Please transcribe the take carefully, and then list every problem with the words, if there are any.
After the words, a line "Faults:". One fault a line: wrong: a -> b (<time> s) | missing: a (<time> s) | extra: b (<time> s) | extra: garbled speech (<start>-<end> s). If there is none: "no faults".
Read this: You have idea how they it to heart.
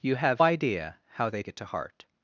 You have idea how they it to heart.
Faults:
no faults